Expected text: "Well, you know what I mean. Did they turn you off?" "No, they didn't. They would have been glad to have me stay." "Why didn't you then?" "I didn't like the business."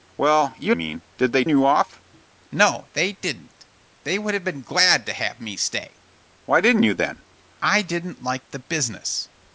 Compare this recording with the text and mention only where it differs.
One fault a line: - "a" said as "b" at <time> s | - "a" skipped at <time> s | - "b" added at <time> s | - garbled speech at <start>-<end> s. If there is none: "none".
- "know what I" skipped at 0.7 s
- "turn" skipped at 1.4 s